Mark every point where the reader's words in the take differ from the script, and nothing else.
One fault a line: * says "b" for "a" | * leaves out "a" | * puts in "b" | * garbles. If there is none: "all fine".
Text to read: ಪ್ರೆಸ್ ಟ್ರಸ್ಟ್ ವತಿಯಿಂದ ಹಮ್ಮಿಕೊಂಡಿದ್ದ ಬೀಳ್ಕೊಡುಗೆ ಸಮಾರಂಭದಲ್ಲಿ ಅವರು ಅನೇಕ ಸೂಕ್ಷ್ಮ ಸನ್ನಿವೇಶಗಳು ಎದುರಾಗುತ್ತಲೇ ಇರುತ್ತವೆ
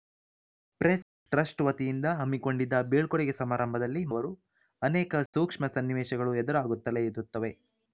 all fine